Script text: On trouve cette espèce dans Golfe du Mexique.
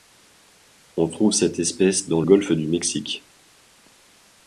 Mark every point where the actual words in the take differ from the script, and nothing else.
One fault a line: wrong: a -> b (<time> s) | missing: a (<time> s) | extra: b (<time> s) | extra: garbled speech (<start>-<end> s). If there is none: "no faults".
no faults